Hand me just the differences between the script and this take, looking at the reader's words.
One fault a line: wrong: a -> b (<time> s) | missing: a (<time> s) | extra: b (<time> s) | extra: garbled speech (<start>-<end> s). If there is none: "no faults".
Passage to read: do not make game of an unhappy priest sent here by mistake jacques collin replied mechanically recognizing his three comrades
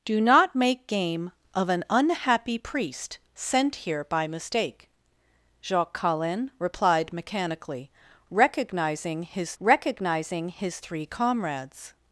extra: recognizing his (9.6 s)